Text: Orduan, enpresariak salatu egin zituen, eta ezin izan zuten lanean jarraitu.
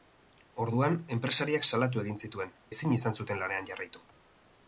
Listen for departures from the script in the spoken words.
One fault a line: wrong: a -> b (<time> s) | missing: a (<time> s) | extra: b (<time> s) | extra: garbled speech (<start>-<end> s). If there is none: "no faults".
missing: eta (2.6 s)